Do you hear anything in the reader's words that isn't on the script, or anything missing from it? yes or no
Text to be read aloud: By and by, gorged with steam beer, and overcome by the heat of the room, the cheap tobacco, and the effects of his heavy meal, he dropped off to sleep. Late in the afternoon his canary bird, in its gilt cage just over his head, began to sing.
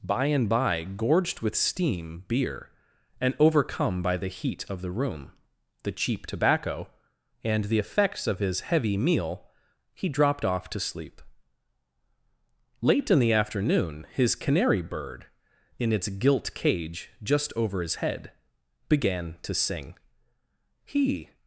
yes